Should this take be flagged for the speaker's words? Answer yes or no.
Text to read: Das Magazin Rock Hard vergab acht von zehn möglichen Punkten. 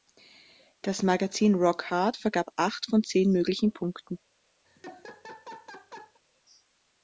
no